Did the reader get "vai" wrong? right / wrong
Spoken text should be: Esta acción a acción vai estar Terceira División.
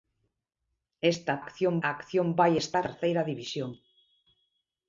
right